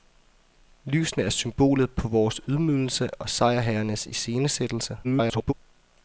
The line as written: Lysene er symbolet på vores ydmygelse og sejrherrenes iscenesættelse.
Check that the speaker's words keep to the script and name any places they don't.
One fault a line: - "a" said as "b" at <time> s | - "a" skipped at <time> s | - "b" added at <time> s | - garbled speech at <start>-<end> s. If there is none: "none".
- garbled speech at 5.0-5.5 s